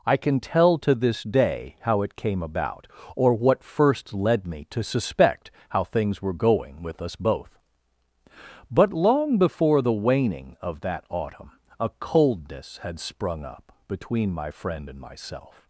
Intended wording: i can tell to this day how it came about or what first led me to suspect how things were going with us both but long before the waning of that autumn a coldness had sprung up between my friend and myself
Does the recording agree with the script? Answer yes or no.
yes